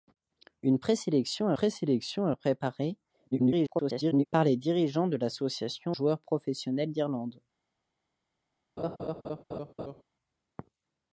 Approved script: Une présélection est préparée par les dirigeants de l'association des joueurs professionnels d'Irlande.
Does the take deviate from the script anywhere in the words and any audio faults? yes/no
yes